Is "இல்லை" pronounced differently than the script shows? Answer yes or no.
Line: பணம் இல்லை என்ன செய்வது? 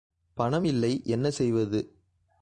no